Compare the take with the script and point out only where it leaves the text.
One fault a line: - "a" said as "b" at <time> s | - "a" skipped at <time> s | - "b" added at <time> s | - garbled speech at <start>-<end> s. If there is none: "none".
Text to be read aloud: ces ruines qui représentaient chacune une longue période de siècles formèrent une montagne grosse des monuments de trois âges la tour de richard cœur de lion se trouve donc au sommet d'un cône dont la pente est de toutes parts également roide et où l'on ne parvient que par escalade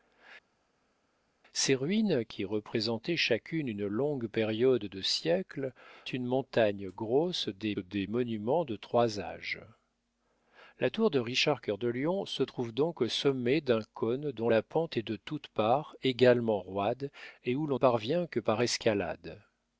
- "formèrent" skipped at 5.7 s
- "des" added at 7.8 s
- "ne" skipped at 17.8 s